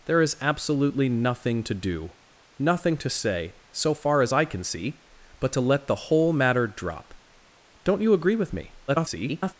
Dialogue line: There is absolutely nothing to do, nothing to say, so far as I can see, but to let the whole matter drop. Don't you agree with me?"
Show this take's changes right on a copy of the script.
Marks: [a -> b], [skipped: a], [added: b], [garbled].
There is absolutely nothing to do, nothing to say, so far as I can see, but to let the whole matter drop. Don't you agree with me?" [garbled]